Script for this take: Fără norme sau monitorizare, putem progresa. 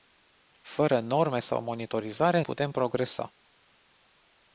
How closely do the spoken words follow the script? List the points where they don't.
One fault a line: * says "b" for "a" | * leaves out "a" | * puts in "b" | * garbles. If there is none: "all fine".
all fine